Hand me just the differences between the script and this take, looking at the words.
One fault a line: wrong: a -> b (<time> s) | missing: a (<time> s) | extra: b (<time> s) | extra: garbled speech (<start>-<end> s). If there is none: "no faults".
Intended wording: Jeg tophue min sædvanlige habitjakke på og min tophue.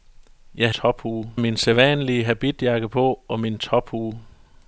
no faults